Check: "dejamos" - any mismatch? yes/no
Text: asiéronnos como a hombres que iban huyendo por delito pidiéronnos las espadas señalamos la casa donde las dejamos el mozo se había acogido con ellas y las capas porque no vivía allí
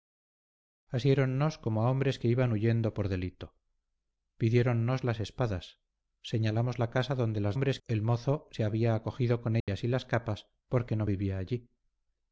yes